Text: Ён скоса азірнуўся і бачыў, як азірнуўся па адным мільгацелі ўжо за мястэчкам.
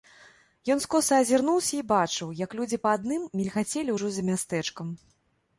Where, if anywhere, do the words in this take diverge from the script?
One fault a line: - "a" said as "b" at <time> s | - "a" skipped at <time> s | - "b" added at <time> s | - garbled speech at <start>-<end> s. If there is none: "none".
- "азірнуўся" said as "людзі" at 2.6 s